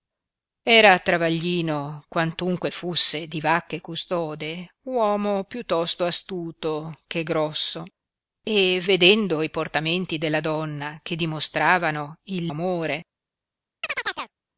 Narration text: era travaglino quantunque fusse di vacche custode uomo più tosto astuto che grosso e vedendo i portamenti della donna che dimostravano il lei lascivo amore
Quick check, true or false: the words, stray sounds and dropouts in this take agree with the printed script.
false